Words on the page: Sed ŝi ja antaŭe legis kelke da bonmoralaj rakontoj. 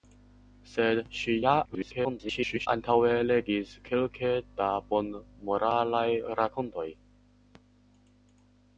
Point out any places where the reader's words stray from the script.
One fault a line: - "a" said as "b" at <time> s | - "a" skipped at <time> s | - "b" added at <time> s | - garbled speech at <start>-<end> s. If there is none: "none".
- garbled speech at 1.7-2.7 s